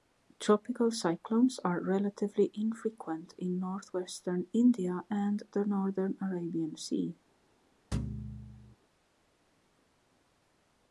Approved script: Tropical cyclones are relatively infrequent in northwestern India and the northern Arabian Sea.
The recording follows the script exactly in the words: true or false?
true